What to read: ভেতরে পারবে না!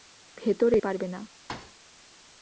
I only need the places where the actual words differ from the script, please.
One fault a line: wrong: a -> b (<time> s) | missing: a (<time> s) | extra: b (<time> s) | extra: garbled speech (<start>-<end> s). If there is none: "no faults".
no faults